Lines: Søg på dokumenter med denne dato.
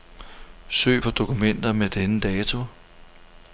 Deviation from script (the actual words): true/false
false